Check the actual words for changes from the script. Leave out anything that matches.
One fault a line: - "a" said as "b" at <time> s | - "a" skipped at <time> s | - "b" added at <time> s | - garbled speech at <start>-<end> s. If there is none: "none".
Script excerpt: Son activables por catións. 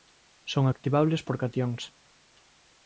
none